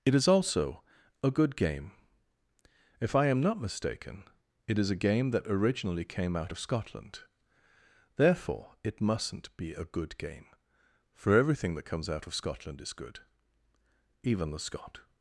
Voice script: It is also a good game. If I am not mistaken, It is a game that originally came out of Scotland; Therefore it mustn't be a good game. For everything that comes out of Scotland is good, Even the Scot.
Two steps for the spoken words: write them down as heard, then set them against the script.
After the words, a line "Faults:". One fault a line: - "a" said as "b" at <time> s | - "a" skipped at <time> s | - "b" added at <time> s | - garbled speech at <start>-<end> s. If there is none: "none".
It is also a good game. If I am not mistaken, It is a game that originally came out of Scotland; Therefore it mustn't be a good game. For everything that comes out of Scotland is good, Even the Scot.
Faults:
none